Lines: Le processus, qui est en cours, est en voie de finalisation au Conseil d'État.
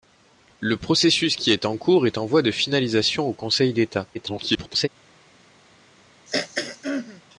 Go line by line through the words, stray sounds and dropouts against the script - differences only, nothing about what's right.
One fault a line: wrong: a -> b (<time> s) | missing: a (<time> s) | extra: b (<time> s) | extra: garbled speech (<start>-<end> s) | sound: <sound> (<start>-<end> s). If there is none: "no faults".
extra: garbled speech (4.1-4.9 s)
sound: throat clearing (6.3-7.2 s)